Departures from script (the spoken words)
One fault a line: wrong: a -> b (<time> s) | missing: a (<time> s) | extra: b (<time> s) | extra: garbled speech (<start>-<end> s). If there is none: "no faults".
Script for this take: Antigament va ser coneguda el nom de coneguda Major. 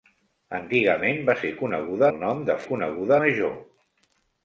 no faults